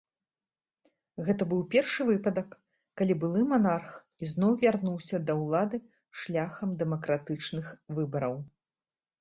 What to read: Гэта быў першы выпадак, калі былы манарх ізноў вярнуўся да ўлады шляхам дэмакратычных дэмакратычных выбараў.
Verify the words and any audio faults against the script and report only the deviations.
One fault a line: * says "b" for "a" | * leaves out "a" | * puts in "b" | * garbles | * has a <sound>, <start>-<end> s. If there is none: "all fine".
* leaves out "дэмакратычных"